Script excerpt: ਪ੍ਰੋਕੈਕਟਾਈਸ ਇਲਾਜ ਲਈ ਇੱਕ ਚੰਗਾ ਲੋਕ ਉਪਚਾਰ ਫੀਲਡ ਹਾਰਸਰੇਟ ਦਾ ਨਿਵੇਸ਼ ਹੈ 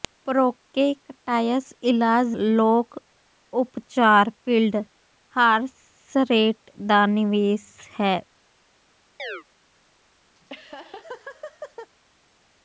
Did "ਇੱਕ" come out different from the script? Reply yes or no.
yes